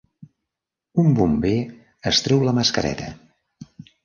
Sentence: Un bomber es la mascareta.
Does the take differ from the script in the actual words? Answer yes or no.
yes